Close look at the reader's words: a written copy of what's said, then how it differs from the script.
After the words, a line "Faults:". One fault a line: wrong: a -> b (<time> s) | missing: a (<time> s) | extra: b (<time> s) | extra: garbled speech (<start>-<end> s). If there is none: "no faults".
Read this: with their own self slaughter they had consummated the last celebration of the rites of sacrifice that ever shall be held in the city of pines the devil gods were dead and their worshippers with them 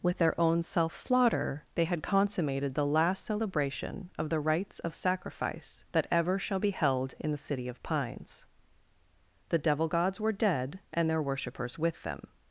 with their own self slaughter they had consummated the last celebration of the rites of sacrifice that ever shall be held in the city of pines the devil gods were dead and their worshippers with them
Faults:
no faults